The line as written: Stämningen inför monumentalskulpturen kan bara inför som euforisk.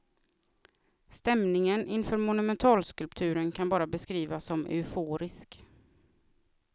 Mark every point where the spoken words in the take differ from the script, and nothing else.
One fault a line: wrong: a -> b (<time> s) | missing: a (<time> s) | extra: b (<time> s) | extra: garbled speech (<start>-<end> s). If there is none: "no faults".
wrong: inför -> beskrivas (3.9 s)